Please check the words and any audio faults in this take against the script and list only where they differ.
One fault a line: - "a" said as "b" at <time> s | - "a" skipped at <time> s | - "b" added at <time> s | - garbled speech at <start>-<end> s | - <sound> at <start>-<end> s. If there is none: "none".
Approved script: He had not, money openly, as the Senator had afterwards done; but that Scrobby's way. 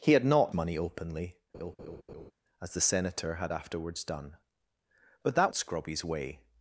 - laugh at 1.5-2.3 s